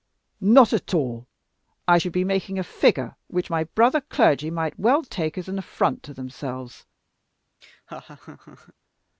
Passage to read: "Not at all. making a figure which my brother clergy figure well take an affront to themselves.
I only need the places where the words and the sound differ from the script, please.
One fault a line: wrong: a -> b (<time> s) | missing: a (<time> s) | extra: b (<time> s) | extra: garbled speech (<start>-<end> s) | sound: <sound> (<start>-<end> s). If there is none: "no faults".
extra: I should be (1.9 s)
wrong: figure -> might (4.5 s)
extra: as (5.4 s)
sound: laugh (7.6-8.7 s)